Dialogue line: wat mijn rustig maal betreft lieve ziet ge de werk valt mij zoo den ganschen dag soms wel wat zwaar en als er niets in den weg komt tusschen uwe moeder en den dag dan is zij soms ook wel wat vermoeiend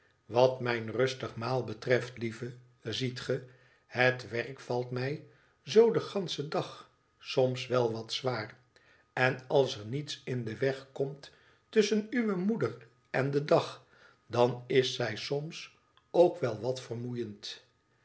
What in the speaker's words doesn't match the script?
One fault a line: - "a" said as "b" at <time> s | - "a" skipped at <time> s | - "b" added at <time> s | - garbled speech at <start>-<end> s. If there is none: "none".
- "de" said as "het" at 3.9 s